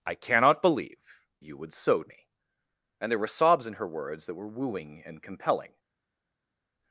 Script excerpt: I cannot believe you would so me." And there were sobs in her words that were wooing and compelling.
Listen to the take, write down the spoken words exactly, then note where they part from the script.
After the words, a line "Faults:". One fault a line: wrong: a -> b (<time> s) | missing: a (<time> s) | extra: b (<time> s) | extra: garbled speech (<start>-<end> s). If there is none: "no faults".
I cannot believe you would so me." And there were sobs in her words that were wooing and compelling.
Faults:
no faults